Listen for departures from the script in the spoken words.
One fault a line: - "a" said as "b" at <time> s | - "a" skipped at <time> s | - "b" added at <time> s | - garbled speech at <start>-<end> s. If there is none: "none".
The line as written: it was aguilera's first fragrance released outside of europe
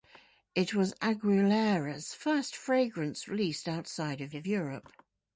- "of" added at 4.3 s